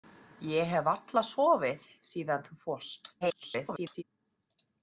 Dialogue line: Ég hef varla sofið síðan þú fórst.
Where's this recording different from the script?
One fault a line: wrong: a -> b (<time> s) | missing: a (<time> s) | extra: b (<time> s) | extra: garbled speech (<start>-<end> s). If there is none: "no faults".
extra: garbled speech (3.2-4.0 s)